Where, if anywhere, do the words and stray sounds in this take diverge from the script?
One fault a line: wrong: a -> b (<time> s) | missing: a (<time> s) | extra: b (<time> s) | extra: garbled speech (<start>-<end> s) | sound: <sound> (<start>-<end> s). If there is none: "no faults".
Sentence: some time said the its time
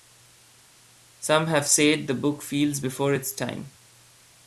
wrong: time -> have (1.4 s)
extra: book feels before (2.1 s)